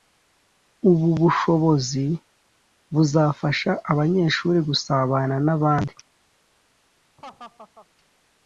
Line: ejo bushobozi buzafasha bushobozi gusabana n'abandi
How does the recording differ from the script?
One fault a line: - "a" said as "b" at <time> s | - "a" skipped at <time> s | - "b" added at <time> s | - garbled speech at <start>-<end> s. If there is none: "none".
- "ejo" said as "ubu" at 0.9 s
- "bushobozi" said as "abanyeshuri" at 3.9 s